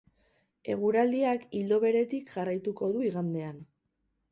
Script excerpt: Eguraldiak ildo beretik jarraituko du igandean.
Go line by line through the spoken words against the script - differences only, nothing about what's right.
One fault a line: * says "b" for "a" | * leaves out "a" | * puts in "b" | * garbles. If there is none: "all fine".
all fine